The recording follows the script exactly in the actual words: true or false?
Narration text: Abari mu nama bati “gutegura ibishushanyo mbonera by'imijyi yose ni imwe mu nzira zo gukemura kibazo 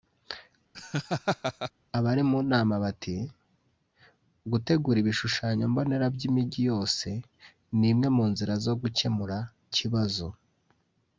true